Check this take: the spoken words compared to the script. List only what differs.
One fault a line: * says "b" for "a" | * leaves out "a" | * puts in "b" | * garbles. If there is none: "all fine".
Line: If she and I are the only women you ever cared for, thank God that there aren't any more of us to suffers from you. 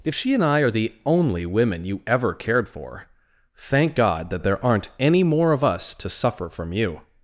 * says "suffer" for "suffers"